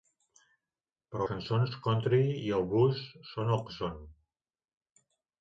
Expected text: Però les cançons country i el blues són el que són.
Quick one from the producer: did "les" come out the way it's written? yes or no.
no